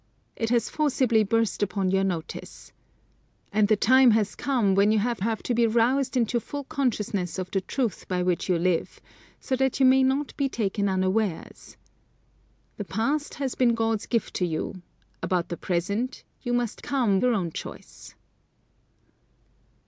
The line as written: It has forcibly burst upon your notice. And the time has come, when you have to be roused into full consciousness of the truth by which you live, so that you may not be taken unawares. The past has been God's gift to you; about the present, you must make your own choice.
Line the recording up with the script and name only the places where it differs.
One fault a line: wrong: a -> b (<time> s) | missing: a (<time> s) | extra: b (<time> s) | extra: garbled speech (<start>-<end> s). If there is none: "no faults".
extra: have (5.2 s)
wrong: make -> come (16.8 s)